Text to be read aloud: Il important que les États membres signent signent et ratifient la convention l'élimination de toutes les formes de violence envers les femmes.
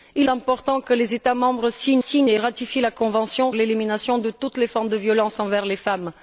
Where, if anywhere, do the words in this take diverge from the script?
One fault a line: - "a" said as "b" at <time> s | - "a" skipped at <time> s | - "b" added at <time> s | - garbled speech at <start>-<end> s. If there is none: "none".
none